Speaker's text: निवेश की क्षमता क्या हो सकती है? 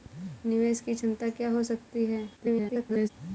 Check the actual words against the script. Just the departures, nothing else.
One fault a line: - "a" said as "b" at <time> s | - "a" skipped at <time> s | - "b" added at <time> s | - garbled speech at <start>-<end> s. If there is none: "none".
- garbled speech at 2.4-3.1 s